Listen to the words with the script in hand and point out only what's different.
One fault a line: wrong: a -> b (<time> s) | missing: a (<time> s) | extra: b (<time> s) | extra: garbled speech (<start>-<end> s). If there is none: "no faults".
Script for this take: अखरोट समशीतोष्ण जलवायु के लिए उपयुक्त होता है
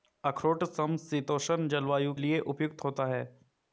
missing: के (2.1 s)